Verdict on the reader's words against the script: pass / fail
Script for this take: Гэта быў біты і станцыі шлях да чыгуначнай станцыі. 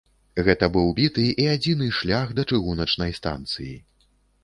fail